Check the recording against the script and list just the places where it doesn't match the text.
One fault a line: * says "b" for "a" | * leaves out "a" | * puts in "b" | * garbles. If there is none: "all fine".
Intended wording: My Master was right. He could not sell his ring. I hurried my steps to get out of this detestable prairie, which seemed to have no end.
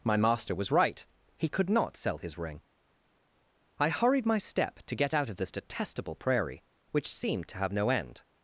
* says "step" for "steps"